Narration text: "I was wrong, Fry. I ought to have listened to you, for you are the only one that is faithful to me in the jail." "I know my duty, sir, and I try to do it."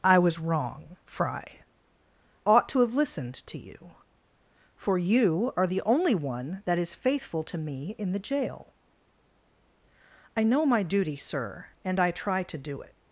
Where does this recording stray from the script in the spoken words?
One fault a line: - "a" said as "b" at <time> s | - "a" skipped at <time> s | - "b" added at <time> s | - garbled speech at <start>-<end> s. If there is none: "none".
- "I" skipped at 1.6 s